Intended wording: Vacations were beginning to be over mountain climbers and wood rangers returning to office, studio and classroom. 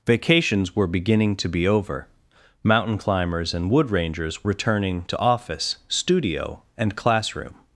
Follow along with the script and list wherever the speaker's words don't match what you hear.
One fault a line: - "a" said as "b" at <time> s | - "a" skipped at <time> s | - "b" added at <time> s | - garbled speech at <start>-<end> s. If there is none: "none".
none